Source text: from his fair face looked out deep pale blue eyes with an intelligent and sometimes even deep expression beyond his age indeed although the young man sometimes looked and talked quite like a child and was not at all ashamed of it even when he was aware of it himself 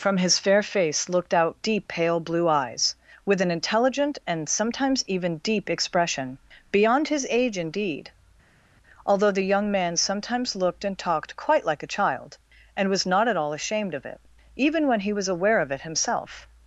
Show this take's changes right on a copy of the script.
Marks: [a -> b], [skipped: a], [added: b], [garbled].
from his fair face looked out deep pale blue eyes with an intelligent and sometimes even deep expression beyond his age indeed although the young man sometimes looked and talked quite like a child and was not at all ashamed of it even when he was aware of it himself